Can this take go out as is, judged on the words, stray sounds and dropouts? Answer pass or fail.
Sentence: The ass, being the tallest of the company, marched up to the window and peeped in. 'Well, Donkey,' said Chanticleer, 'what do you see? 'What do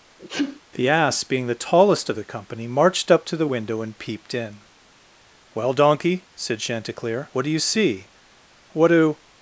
fail